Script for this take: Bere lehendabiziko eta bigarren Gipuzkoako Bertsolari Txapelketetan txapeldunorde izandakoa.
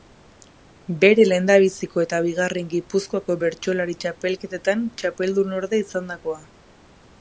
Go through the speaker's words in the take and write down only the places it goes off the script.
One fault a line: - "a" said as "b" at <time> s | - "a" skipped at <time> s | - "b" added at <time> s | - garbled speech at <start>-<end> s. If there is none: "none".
none